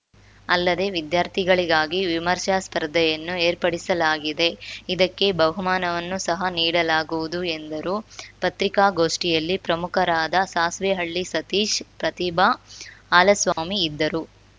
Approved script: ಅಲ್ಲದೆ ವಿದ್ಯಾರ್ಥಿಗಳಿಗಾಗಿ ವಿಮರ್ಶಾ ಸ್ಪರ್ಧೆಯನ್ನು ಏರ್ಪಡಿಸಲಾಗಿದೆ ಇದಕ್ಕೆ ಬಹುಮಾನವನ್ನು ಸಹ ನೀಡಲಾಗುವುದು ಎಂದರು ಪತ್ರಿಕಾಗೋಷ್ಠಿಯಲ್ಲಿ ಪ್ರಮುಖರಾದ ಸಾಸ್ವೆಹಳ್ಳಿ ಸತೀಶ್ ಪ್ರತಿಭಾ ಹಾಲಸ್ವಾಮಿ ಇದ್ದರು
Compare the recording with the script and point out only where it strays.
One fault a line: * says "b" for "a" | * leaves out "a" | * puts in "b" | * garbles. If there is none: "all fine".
all fine